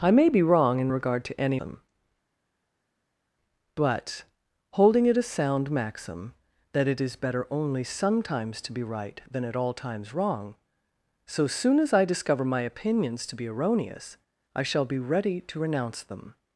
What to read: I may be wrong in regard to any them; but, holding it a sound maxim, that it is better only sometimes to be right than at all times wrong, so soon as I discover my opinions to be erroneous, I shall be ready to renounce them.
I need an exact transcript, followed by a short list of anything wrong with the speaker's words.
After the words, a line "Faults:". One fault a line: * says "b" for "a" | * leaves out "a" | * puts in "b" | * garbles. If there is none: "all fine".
I may be wrong in regard to any them; but, holding it a sound maxim, that it is better only sometimes to be right than at all times wrong, so soon as I discover my opinions to be erroneous, I shall be ready to renounce them.
Faults:
all fine